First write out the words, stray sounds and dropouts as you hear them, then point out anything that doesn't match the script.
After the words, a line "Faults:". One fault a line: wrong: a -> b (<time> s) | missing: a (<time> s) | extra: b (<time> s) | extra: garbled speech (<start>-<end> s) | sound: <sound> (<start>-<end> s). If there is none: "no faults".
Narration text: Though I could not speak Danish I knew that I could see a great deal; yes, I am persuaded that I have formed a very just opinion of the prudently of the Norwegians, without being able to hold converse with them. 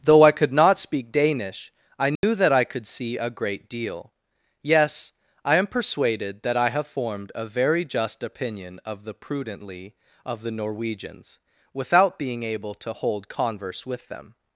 Though I could not speak Danish I knew that I could see a great deal; yes, I am persuaded that I have formed a very just opinion of the prudently of the Norwegians, without being able to hold converse with them.
Faults:
sound: dropout (2.2-2.2 s)